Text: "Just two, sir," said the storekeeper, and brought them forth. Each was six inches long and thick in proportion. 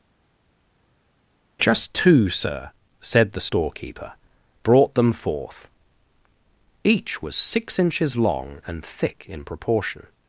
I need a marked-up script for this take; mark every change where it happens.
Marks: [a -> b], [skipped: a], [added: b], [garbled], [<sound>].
"Just two, sir," said the storekeeper, [skipped: and] brought them forth. Each was six inches long and thick in proportion.